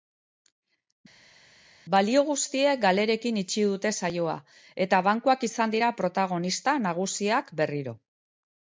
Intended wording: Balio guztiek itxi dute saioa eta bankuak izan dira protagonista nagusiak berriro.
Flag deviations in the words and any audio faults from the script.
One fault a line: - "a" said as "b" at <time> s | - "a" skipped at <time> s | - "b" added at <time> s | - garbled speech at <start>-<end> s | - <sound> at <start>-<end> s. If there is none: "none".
- "galerekin" added at 2.9 s